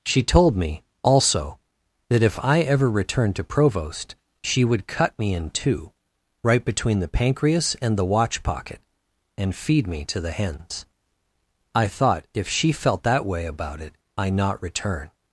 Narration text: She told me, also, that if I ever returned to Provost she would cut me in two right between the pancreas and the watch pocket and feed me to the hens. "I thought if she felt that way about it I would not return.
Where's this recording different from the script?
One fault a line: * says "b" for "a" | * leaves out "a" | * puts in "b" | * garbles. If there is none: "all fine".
* leaves out "would"